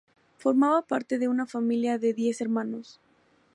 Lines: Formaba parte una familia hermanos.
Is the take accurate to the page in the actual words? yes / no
no